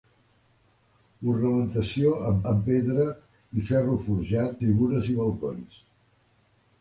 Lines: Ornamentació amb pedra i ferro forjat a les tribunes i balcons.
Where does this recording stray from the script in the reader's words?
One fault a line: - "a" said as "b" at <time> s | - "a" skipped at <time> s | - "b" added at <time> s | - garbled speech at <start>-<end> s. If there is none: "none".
- "amb" added at 2.5 s
- "a les" skipped at 4.6 s